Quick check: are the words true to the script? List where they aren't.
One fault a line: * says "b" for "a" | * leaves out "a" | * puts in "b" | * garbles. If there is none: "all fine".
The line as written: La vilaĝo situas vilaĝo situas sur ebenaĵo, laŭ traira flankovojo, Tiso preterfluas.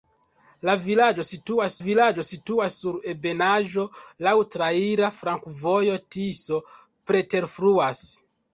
all fine